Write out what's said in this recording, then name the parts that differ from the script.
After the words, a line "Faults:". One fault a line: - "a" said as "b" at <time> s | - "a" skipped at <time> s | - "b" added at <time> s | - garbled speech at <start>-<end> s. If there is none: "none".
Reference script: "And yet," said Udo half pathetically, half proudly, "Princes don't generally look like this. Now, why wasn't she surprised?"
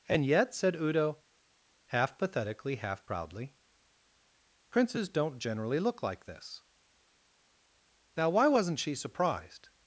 "And yet," said Udo half pathetically, half proudly, "Princes don't generally look like this. Now, why wasn't she surprised?"
Faults:
none